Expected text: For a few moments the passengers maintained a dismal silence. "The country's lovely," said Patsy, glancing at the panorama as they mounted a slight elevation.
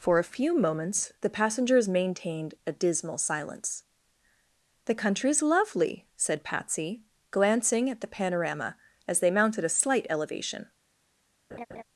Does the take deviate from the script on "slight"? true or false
false